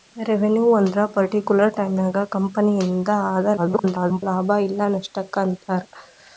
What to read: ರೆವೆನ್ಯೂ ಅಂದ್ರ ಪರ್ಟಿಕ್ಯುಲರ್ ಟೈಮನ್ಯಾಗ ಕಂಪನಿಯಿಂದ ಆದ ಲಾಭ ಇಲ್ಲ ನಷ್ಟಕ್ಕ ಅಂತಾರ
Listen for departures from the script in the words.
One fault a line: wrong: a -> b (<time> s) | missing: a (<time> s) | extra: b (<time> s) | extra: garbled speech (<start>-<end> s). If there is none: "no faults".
extra: garbled speech (3.6-4.2 s)